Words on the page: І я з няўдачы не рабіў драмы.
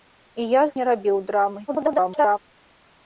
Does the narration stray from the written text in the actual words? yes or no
yes